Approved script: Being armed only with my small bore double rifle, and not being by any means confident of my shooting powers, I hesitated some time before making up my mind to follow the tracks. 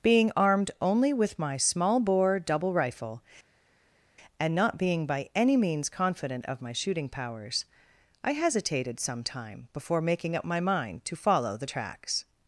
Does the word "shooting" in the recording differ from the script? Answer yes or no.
no